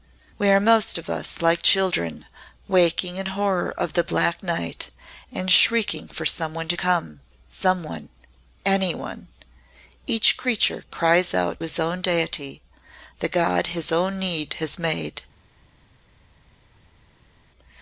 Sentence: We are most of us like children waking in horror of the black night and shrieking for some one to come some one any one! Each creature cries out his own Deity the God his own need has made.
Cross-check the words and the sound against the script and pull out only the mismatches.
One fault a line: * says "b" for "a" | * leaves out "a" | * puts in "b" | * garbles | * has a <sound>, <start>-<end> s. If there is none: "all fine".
all fine